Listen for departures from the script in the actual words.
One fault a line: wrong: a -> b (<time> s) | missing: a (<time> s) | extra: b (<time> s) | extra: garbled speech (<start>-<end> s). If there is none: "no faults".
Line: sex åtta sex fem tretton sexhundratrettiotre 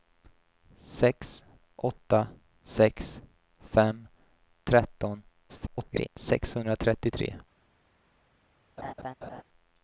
extra: garbled speech (5.5-6.1 s)